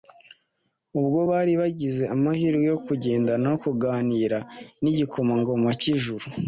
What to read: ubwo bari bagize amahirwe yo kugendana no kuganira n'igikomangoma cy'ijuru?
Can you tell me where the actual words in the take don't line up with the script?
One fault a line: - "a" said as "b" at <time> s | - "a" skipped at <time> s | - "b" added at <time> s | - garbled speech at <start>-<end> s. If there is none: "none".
none